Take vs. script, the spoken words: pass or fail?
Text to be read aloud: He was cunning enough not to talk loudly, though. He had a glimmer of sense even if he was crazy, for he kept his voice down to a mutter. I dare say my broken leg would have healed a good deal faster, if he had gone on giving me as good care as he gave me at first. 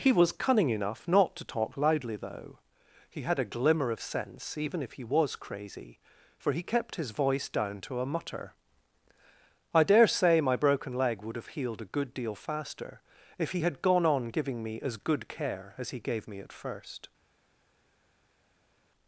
pass